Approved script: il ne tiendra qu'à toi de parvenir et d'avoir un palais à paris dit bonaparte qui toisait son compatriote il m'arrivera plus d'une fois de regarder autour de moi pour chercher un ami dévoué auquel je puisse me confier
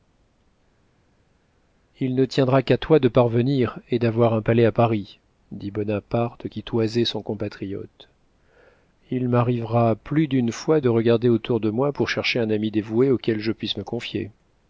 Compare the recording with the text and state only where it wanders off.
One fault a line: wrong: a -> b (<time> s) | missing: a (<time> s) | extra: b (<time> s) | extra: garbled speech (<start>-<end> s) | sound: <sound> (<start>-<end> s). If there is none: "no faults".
no faults